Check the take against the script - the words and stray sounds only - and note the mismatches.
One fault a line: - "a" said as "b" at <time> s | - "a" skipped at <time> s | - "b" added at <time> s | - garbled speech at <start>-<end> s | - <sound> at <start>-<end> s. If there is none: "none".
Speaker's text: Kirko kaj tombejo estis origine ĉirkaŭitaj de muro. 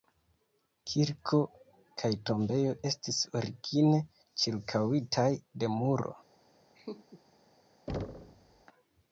- laugh at 6.7-7.2 s
- thud at 7.9-8.6 s